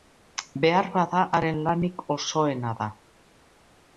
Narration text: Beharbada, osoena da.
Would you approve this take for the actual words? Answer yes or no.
no